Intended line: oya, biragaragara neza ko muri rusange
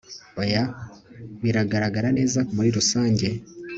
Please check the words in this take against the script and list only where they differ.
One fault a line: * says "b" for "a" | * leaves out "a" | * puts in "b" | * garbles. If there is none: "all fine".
* leaves out "ko"